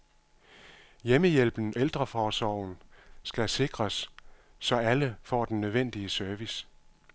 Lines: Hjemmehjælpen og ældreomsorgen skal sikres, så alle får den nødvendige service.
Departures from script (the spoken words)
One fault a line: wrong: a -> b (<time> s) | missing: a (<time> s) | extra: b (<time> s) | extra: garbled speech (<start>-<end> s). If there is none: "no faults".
missing: og (1.7 s)